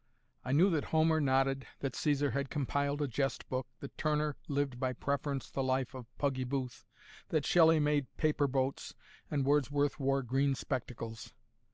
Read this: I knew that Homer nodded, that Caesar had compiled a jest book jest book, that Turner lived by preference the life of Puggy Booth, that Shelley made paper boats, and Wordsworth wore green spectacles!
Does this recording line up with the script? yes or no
no